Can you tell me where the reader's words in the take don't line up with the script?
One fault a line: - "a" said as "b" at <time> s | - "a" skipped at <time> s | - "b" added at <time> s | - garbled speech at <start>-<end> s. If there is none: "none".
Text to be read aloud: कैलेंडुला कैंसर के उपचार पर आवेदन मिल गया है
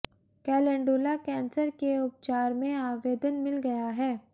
- "पर" said as "में" at 2.5 s